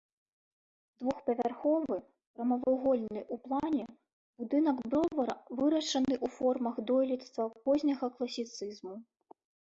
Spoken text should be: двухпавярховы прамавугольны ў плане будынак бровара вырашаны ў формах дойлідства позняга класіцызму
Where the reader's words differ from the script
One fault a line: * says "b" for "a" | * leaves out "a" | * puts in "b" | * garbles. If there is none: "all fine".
all fine